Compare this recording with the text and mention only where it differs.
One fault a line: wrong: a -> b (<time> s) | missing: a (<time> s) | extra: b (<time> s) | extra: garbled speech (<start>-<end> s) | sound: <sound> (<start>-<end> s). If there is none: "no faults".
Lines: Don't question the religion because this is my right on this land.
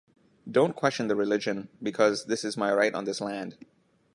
no faults